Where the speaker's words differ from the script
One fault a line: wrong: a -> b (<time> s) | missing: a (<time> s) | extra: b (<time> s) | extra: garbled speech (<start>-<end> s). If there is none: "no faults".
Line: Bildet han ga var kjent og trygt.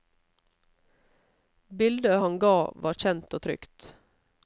no faults